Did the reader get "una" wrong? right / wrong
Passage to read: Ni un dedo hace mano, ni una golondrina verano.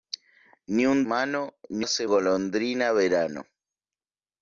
wrong